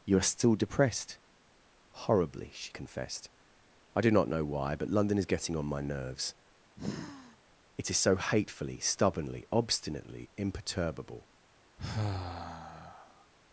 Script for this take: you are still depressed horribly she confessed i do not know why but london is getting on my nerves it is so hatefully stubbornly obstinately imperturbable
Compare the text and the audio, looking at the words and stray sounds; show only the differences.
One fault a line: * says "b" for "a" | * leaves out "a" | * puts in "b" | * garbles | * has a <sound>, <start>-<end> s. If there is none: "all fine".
* has a sigh, 6.8-7.4 s
* has a sigh, 11.8-13.3 s